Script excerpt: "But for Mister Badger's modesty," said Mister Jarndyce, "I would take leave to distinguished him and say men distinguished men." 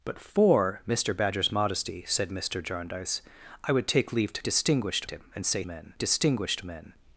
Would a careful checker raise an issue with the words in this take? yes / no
no